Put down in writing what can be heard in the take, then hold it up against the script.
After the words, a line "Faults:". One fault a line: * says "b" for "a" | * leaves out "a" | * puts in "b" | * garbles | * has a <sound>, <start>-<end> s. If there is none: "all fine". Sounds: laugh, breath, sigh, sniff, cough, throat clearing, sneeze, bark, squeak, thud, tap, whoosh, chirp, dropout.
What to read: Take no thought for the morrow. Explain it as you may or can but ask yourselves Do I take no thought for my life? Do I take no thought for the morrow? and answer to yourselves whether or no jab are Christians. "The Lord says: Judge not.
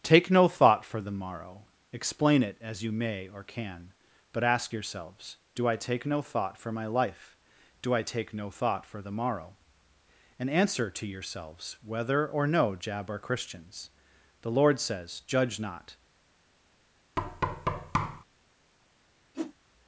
Take no thought for the morrow. Explain it as you may or can but ask yourselves Do I take no thought for my life? Do I take no thought for the morrow? and answer to yourselves whether or no jab are Christians. "The Lord says: Judge not.
Faults:
* has a thud, 17.2-18.2 s
* has a whoosh, 19.3-19.5 s